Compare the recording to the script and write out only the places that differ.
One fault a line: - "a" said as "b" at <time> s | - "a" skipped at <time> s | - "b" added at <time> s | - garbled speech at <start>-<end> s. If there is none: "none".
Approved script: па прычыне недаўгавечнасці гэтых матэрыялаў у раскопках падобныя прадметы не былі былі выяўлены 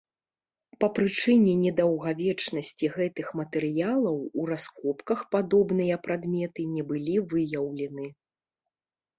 - "былі" skipped at 7.2 s